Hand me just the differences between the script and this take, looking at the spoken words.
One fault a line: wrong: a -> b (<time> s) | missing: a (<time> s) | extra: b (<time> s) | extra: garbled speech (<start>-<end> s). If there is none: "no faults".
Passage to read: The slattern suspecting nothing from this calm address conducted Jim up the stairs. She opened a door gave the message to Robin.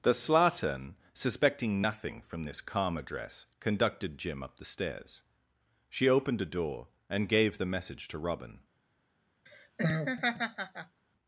extra: and (7.1 s)